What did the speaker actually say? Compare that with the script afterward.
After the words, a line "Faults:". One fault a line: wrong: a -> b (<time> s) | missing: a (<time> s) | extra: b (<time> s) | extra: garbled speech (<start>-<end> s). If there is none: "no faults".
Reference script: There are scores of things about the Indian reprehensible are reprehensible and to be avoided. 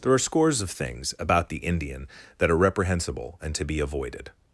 There are scores of things about the Indian that are reprehensible and to be avoided.
Faults:
wrong: reprehensible -> that (2.4 s)